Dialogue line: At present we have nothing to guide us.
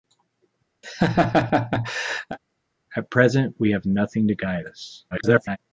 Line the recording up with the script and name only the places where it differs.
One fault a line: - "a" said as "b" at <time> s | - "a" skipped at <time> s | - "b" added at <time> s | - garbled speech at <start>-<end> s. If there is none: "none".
- garbled speech at 5.1-5.6 s